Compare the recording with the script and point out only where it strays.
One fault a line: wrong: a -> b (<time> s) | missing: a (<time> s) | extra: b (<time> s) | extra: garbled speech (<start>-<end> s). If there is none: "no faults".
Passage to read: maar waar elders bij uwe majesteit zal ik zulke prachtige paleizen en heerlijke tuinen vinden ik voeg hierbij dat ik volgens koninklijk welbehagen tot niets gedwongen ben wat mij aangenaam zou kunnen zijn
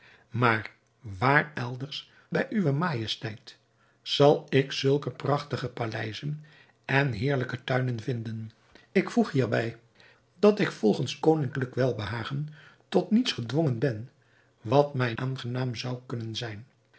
no faults